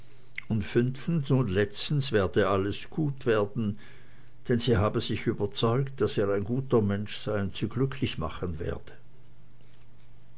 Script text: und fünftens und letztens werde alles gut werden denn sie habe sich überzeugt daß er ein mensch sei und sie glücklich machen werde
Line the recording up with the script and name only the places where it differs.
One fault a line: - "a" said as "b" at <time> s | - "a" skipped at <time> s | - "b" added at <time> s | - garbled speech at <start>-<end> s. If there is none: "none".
- "guter" added at 6.4 s